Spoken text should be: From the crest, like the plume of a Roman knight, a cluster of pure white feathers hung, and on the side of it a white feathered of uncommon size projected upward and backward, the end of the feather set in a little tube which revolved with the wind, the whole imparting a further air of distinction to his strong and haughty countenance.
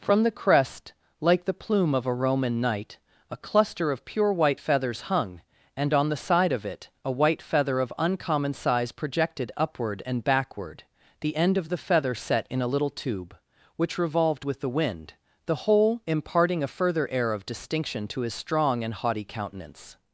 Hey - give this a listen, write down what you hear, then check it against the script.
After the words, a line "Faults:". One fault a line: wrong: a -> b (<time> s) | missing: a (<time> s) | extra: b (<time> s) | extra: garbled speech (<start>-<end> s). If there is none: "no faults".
From the crest, like the plume of a Roman knight, a cluster of pure white feathers hung, and on the side of it a white feather of uncommon size projected upward and backward, the end of the feather set in a little tube which revolved with the wind, the whole imparting a further air of distinction to his strong and haughty countenance.
Faults:
wrong: feathered -> feather (7.4 s)